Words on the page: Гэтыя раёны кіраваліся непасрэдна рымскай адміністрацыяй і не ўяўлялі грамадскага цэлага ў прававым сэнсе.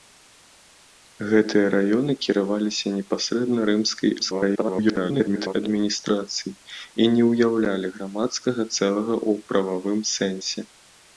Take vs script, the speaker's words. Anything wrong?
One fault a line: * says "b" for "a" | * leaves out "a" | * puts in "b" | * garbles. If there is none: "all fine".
* garbles